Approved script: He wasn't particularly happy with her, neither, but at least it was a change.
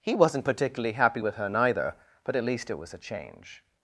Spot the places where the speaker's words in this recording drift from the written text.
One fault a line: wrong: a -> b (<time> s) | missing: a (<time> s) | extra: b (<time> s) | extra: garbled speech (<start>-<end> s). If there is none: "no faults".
no faults